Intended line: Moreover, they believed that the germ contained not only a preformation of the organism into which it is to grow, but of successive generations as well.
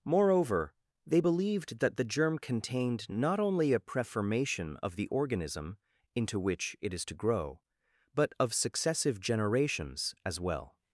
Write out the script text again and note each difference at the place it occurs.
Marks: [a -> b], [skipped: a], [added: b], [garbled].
Moreover, they believed that the germ contained not only a preformation of the organism into which it is to grow, but of successive generations as well.